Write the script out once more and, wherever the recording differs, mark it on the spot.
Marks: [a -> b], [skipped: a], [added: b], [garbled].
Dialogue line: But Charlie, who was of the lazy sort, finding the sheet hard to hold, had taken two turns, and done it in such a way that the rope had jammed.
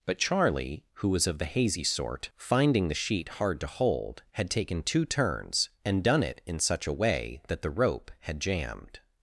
But Charlie, who was of the [lazy -> hazy] sort, finding the sheet hard to hold, had taken two turns, and done it in such a way that the rope had jammed.